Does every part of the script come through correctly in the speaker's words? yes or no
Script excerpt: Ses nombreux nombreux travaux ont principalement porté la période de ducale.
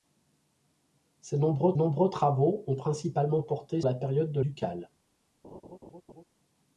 yes